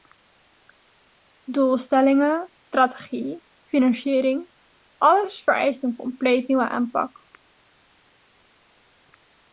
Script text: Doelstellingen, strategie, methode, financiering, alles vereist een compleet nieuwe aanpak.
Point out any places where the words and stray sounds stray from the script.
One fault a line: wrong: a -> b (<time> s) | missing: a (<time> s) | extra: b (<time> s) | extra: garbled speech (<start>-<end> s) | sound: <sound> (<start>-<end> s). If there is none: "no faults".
missing: methode (3.4 s)